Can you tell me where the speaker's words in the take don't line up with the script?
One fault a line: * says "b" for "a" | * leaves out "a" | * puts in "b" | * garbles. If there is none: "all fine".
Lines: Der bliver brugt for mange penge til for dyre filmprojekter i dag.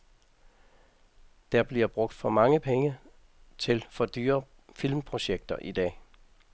all fine